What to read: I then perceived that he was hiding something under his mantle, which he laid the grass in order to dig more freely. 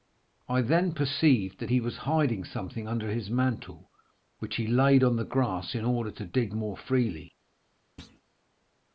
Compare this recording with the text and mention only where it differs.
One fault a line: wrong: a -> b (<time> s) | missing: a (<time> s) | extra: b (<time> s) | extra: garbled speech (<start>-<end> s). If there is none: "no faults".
extra: on (5.0 s)